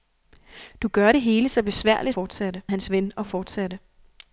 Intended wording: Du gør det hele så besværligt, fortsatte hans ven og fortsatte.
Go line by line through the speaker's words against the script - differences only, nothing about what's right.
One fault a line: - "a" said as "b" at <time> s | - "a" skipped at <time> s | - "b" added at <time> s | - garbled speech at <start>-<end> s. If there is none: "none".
none